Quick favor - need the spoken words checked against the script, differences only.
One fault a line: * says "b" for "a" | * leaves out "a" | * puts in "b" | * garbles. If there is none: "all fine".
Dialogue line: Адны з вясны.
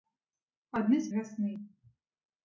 all fine